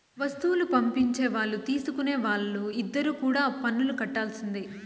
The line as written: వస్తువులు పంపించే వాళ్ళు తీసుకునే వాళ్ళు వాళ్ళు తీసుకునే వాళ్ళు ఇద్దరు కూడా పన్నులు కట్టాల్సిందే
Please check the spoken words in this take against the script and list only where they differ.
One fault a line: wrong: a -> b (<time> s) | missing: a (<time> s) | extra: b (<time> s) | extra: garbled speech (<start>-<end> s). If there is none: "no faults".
missing: వాళ్ళు తీసుకునే వాళ్ళు (2.6 s)